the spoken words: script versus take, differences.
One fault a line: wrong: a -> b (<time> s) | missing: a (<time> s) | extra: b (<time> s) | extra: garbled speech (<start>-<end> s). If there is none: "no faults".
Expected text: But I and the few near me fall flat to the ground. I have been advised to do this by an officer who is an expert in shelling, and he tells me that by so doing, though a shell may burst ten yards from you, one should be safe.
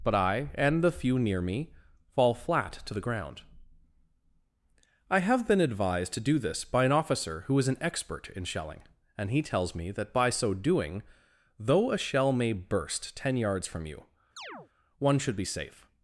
no faults